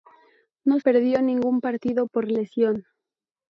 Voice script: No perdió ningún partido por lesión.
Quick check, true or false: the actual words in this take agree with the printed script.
true